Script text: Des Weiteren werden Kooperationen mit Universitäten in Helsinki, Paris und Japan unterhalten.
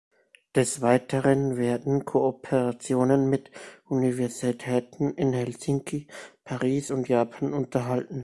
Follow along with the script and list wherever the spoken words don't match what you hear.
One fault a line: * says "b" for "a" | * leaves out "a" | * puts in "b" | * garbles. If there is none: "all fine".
all fine